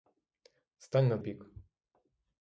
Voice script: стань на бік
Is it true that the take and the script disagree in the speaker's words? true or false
false